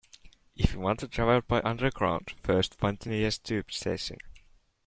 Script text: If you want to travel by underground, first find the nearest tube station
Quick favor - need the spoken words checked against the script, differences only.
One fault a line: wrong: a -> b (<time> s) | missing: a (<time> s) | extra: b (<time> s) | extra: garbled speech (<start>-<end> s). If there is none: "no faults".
no faults